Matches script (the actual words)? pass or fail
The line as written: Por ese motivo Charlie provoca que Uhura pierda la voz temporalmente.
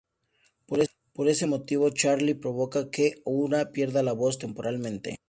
pass